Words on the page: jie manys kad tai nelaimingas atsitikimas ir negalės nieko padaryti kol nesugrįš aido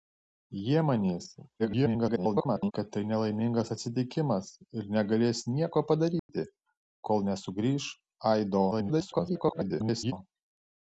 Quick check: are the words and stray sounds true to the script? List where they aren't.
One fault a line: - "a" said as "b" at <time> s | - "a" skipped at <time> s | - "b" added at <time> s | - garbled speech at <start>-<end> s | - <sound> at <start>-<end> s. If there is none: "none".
- garbled speech at 1.6-2.7 s
- dropout at 6.2-6.3 s
- garbled speech at 8.7-10.1 s